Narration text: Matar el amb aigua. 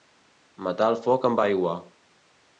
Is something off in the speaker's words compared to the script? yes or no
yes